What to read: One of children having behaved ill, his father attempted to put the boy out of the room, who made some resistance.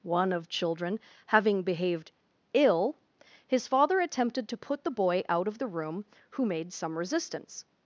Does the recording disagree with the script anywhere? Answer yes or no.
no